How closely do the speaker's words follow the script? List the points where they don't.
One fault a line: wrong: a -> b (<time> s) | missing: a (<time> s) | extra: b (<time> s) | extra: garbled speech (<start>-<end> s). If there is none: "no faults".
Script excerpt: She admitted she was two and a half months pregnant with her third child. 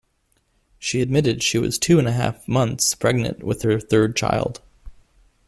no faults